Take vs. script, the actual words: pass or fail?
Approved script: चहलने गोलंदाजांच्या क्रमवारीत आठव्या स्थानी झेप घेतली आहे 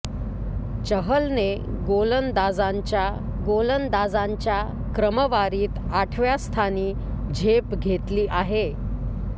fail